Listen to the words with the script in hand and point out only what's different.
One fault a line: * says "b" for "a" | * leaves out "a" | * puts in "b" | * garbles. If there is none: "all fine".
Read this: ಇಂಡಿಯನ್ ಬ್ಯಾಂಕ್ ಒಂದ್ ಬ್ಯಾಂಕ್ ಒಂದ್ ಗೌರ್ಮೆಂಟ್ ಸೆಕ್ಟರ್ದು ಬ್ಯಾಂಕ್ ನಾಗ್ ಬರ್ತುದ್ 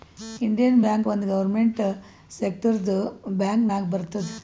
* leaves out "ಬ್ಯಾಂಕ್ ಒಂದ್"